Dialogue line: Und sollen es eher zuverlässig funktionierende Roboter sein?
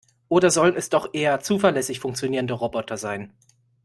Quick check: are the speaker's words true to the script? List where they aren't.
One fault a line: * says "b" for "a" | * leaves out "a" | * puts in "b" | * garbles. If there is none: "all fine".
* says "Oder" for "Und"
* puts in "doch"